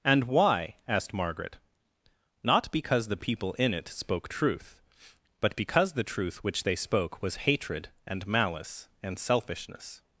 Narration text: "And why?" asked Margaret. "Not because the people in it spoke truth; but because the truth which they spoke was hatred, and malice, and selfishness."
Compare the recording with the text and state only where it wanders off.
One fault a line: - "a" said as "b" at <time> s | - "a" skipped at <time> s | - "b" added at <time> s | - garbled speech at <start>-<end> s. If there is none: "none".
none